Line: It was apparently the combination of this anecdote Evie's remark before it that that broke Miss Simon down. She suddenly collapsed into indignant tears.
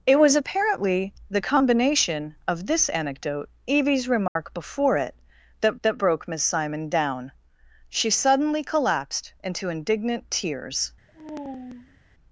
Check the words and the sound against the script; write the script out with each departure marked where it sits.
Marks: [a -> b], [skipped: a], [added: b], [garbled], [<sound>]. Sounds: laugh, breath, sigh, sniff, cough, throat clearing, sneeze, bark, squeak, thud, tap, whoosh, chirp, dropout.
It was apparently the combination of this anecdote Evie's remark [dropout] before it that that broke Miss Simon down. She suddenly collapsed into indignant tears. [sigh]